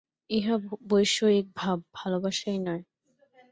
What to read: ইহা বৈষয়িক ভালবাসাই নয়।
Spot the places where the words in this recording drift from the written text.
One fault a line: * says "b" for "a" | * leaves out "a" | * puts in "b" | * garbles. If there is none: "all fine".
* puts in "ভাব"